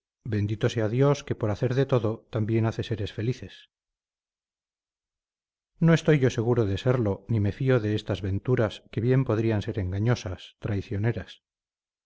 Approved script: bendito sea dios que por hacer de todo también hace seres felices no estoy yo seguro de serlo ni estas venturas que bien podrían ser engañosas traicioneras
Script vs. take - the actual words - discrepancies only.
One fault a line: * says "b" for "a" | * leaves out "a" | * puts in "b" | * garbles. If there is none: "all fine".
* puts in "me fío de"